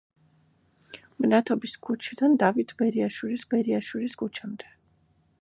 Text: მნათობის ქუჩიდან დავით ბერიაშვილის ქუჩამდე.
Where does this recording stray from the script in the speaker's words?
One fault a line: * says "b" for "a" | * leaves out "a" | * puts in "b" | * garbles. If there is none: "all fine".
* puts in "ბერიაშვილის"